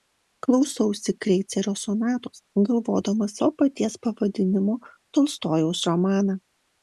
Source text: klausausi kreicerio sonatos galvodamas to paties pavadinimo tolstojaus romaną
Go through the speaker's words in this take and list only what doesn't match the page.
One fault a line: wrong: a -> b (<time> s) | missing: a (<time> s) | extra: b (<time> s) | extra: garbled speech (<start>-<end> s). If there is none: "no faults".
no faults